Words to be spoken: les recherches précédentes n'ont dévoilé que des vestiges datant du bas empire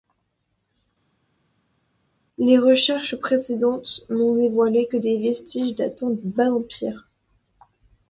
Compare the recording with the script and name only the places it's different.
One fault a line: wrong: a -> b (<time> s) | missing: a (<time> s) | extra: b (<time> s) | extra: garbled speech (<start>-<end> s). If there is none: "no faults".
no faults